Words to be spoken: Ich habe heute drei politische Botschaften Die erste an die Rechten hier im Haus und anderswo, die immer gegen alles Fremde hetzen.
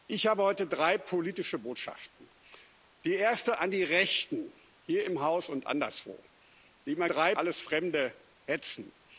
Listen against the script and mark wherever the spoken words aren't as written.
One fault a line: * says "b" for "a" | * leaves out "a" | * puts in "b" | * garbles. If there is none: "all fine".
* says "drei" for "gegen"